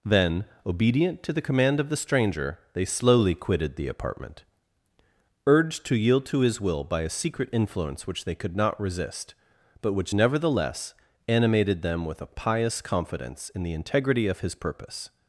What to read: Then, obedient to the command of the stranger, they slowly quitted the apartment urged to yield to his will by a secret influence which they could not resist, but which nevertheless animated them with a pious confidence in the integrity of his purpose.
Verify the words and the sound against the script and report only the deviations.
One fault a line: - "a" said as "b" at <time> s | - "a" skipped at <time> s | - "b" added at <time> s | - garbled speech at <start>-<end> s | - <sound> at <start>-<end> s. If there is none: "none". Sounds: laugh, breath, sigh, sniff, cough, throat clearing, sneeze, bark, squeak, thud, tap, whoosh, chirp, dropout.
none